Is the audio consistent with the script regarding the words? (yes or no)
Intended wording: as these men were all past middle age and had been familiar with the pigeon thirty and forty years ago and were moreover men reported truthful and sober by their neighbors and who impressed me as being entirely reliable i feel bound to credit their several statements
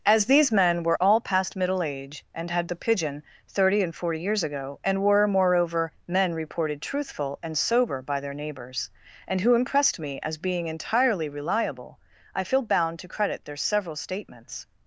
no